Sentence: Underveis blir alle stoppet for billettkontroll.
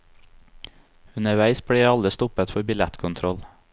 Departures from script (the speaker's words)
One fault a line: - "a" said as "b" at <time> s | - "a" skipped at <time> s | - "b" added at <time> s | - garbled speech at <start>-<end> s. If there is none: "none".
none